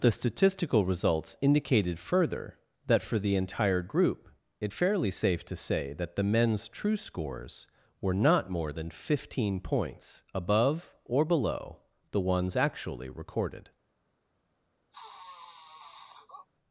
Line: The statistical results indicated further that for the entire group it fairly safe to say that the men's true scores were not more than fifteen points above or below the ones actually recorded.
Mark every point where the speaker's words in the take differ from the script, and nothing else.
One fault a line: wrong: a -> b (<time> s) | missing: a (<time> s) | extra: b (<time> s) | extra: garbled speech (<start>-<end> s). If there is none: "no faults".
no faults